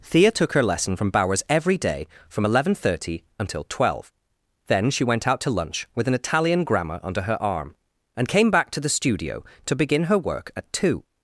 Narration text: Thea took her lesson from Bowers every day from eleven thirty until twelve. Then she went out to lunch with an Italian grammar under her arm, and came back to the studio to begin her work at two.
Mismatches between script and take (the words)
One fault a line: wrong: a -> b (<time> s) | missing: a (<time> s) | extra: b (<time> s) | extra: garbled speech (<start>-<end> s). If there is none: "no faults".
no faults